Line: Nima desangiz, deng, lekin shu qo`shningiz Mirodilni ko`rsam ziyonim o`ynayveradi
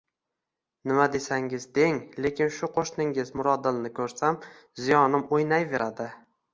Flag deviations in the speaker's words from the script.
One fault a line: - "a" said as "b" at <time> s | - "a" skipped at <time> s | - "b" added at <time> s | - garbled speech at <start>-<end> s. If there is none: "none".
none